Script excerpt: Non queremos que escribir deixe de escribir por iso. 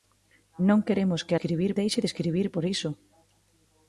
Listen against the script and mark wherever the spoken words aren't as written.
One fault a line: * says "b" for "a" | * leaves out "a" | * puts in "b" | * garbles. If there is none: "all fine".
all fine